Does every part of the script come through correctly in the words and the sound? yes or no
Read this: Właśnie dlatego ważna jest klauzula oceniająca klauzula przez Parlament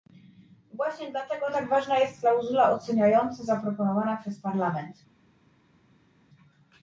no